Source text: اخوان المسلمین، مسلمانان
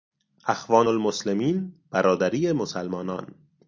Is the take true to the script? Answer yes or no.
no